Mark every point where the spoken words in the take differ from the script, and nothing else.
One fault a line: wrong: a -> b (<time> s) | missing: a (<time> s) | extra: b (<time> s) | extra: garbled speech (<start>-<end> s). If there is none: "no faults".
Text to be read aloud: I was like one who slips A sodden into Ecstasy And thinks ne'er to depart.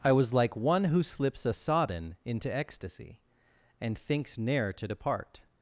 no faults